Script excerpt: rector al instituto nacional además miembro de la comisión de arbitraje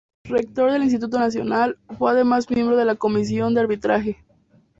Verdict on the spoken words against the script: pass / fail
fail